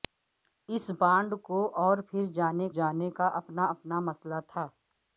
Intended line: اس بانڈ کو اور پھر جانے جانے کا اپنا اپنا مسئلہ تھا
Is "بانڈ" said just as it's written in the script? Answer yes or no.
yes